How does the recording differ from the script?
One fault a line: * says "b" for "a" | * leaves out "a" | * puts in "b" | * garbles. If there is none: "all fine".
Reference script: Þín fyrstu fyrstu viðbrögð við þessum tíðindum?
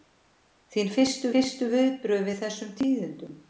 all fine